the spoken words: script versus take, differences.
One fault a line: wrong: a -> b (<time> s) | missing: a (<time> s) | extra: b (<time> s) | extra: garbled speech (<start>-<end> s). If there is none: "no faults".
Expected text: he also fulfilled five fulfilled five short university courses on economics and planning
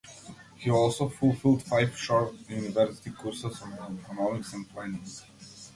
missing: fulfilled five (2.0 s)